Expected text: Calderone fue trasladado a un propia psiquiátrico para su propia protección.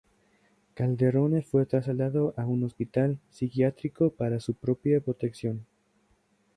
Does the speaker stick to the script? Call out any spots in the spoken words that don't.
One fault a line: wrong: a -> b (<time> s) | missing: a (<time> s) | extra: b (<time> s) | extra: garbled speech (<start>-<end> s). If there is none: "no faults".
wrong: propia -> hospital (2.6 s)